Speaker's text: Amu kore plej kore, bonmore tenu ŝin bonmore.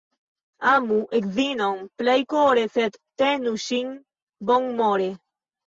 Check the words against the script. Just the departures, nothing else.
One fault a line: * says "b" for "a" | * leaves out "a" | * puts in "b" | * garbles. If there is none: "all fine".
* says "edzinon" for "kore"
* says "sed" for "bonmore"